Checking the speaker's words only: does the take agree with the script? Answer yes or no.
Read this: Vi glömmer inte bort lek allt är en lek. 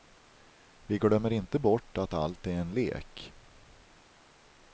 no